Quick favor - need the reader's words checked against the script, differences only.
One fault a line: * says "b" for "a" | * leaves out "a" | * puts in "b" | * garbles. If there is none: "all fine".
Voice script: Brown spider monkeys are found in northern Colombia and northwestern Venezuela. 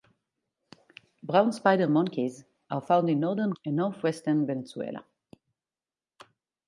* leaves out "Colombia"